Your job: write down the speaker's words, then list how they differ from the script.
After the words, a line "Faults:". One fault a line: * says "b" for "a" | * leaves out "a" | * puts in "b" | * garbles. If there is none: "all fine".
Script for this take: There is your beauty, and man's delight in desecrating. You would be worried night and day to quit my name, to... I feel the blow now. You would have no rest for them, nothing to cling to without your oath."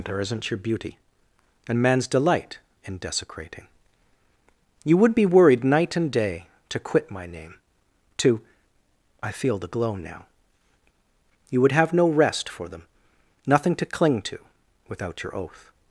There isn't your beauty, and man's delight in desecrating. You would be worried night and day to quit my name, to... I feel the glow now. You would have no rest for them, nothing to cling to without your oath."
Faults:
* says "isn't" for "is"
* says "glow" for "blow"